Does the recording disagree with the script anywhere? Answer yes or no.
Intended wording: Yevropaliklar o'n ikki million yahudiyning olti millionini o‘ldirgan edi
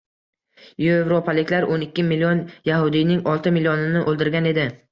no